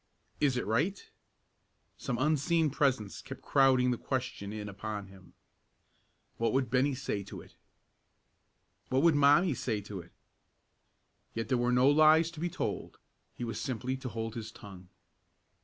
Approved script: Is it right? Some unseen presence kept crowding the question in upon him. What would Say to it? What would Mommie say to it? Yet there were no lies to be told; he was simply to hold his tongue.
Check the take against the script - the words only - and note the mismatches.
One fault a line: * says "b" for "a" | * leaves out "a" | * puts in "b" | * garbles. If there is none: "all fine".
* puts in "Bennie"